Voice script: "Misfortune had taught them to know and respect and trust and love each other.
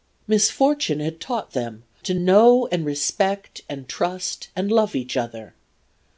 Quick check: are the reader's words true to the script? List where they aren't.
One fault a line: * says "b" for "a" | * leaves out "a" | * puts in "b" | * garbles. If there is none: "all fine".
all fine